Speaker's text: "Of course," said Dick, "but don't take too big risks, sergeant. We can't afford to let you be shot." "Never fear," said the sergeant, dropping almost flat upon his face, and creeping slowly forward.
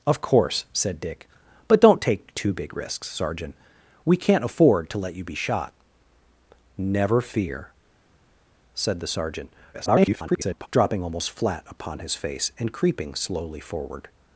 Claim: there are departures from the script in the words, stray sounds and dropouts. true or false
true